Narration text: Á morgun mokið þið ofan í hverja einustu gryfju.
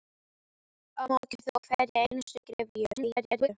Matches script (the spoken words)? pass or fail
fail